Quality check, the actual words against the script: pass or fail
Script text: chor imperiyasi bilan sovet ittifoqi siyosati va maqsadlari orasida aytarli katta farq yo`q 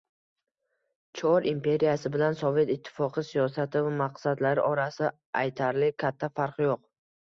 pass